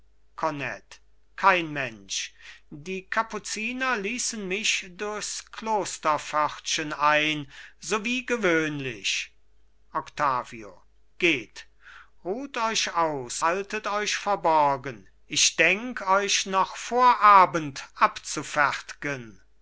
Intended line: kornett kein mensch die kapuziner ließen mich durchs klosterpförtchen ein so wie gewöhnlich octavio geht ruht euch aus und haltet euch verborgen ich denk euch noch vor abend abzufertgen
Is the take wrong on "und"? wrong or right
wrong